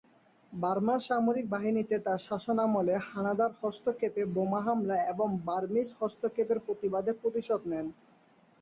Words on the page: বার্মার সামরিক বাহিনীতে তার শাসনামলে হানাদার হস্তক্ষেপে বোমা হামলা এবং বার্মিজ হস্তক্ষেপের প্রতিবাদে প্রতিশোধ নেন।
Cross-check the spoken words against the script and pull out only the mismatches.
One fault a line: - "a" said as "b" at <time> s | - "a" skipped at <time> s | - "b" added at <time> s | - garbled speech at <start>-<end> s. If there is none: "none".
none